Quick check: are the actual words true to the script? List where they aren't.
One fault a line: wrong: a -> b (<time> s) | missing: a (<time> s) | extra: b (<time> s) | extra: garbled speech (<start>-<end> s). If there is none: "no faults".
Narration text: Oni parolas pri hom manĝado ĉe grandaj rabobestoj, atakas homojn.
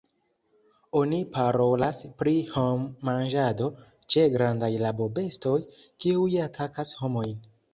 extra: kiuj (6.1 s)